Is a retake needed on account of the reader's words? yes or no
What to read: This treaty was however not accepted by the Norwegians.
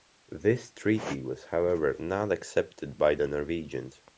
no